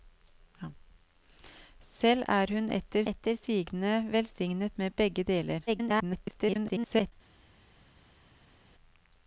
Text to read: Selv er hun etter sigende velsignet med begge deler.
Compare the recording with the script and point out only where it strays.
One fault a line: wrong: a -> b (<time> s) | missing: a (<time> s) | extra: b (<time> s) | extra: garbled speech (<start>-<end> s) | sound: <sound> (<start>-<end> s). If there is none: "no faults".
extra: etter (3.0 s)
extra: garbled speech (5.7-7.1 s)